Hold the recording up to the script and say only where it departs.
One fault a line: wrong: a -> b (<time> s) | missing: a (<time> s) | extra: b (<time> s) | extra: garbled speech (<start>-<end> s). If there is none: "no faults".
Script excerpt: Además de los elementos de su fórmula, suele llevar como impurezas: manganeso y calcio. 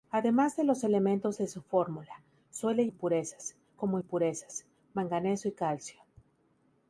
wrong: llevar -> impurezas (2.9 s)